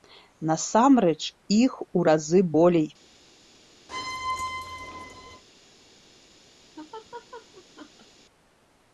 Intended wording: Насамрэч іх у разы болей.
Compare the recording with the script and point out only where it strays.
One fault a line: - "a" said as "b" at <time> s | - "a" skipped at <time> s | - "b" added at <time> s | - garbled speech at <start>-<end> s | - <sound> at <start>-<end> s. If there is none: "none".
- squeak at 3.9-5.4 s
- laugh at 6.8-8.1 s